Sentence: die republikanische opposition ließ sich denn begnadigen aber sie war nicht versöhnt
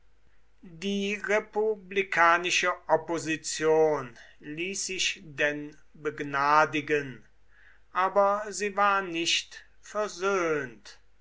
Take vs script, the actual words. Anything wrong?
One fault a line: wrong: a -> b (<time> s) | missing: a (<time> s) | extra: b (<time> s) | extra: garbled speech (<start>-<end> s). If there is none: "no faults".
no faults